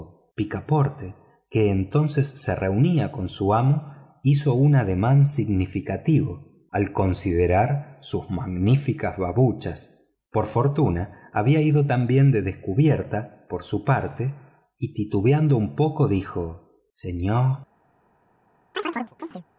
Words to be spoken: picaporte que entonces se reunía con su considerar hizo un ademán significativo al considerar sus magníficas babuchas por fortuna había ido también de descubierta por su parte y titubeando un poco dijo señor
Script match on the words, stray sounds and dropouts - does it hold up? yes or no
no